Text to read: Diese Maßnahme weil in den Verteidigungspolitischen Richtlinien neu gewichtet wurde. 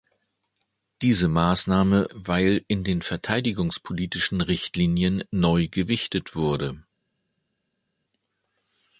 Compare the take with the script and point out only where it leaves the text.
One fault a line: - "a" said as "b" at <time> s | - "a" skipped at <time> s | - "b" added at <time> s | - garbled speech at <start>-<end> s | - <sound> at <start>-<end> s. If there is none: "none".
none